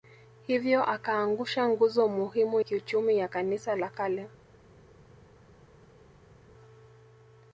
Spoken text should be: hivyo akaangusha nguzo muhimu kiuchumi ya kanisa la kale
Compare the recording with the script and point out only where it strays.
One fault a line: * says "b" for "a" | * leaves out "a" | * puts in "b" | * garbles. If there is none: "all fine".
all fine